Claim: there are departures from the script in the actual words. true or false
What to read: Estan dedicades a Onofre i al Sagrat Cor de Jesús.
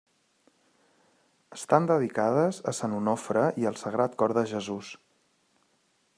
true